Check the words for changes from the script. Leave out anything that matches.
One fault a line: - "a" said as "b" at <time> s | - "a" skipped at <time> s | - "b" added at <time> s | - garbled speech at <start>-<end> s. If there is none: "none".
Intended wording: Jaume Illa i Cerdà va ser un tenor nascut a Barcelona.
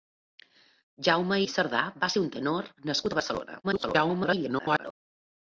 - "Illa" skipped at 1.4 s
- garbled speech at 3.6-4.9 s